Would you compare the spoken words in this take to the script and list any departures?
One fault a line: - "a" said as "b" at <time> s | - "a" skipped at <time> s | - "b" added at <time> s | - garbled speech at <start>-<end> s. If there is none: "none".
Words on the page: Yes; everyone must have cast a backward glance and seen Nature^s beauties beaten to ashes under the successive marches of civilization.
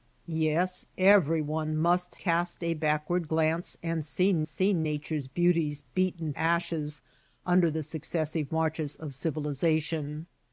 - "have" skipped at 2.1 s
- "seen" added at 4.5 s
- "to" skipped at 6.3 s